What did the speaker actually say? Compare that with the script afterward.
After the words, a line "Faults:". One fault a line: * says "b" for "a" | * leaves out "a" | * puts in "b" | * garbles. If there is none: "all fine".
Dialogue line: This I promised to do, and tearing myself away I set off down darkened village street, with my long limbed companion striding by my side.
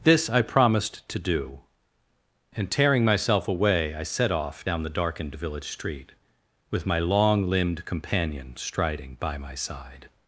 This I promised to do, and tearing myself away I set off down the darkened village street, with my long limbed companion striding by my side.
Faults:
* puts in "the"